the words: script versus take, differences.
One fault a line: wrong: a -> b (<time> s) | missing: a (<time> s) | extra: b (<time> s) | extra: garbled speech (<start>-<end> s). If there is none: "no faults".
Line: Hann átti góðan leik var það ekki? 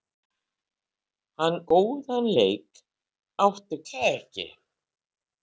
missing: átti (1.6 s)
wrong: var -> átti (3.5 s)